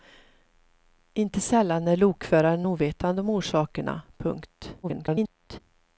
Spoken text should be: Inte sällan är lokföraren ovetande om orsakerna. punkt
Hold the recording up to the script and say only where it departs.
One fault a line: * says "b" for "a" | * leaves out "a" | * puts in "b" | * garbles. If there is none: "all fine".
* garbles